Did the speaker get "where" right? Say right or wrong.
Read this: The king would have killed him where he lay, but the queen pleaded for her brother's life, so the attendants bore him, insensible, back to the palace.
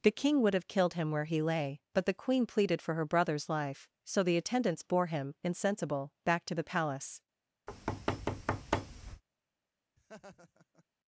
right